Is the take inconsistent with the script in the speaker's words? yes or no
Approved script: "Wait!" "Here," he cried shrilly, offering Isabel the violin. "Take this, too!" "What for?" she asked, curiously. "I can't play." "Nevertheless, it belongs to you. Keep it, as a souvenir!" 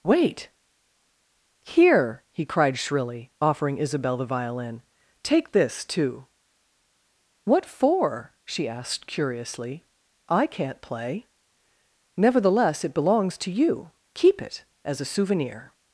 no